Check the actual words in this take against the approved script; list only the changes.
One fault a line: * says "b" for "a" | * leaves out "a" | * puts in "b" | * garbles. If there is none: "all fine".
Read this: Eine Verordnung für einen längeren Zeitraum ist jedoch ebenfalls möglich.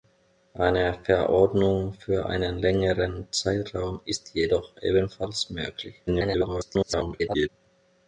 * garbles